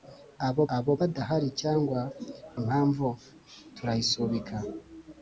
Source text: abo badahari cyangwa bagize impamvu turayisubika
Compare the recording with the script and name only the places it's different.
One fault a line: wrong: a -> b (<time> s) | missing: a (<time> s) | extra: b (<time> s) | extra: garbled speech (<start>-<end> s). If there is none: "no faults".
extra: abo (0.8 s)
missing: bagize (2.0 s)